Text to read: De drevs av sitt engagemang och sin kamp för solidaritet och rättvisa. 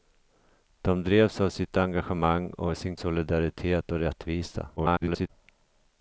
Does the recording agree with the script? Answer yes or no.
no